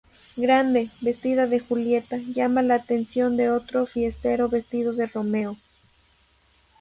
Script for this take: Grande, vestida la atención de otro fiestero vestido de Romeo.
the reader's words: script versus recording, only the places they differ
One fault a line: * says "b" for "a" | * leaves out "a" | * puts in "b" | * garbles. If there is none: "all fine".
* puts in "de Julieta llama"